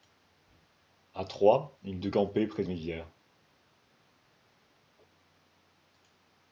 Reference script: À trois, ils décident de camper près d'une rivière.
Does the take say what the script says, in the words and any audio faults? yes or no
no